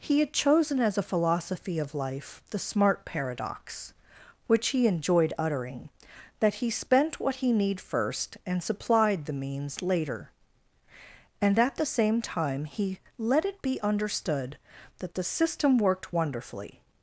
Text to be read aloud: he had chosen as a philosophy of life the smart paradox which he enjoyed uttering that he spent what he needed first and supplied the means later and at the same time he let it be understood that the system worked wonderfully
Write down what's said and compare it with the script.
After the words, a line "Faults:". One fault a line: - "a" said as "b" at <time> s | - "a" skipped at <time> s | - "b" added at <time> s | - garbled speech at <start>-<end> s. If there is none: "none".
he had chosen as a philosophy of life the smart paradox which he enjoyed uttering that he spent what he need first and supplied the means later and at the same time he let it be understood that the system worked wonderfully
Faults:
- "needed" said as "need" at 7.5 s